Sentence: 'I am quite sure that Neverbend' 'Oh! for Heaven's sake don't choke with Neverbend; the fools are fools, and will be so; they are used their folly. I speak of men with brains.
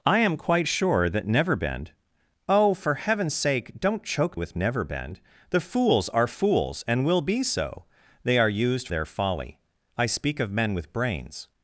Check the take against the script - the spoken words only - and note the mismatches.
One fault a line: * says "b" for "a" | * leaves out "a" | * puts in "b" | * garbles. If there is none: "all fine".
all fine